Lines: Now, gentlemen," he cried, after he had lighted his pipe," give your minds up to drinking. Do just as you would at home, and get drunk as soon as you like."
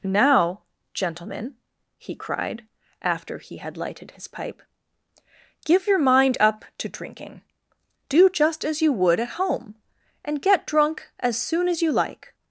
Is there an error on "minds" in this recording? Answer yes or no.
yes